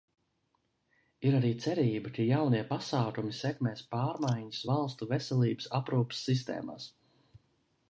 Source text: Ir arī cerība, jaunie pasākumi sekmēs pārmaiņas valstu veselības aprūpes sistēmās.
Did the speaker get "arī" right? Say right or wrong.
right